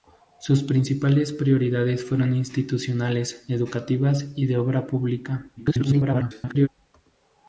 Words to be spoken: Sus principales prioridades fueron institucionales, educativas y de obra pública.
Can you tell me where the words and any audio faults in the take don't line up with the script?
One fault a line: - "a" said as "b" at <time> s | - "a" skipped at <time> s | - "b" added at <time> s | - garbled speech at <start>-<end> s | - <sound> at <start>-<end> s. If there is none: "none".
- garbled speech at 5.6-6.7 s